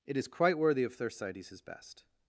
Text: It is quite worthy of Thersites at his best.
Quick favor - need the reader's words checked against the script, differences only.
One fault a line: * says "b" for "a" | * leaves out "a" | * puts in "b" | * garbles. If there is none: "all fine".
* leaves out "at"